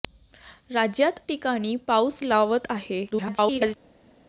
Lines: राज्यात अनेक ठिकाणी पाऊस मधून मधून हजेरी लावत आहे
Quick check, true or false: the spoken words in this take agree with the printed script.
false